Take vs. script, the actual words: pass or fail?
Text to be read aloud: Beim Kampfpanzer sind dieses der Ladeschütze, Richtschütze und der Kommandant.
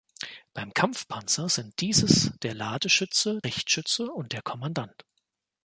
pass